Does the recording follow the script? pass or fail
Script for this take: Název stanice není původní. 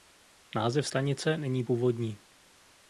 pass